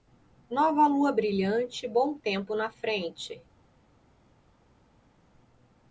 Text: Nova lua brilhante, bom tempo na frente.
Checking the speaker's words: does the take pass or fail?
pass